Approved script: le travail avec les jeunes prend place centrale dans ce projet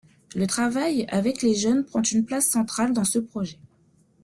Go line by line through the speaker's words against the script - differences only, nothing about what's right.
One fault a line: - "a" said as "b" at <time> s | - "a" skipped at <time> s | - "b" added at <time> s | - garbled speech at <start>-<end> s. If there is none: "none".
- "une" added at 2.0 s